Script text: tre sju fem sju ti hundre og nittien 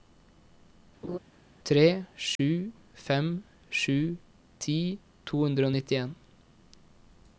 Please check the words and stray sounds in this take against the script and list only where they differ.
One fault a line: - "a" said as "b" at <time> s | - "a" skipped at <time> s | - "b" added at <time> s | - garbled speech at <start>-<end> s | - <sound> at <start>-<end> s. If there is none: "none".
- laugh at 1.0-1.2 s
- dropout at 2.4-2.4 s
- "to" added at 5.3 s